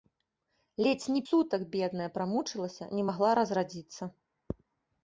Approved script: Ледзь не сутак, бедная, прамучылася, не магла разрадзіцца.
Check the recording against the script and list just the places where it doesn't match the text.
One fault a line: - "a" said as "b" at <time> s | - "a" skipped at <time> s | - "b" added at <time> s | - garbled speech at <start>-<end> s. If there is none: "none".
none